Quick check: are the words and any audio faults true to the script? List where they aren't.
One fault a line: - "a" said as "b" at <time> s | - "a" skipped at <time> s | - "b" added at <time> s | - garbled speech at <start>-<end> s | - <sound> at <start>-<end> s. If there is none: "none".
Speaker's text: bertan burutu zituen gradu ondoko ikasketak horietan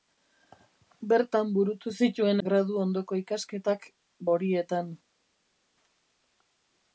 none